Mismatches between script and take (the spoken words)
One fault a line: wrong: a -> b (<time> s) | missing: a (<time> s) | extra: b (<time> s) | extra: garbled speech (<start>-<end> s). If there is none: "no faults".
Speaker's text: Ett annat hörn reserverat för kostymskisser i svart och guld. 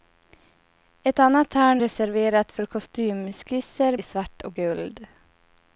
no faults